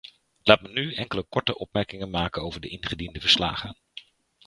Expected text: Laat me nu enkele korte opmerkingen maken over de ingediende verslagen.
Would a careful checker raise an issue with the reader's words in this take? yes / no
no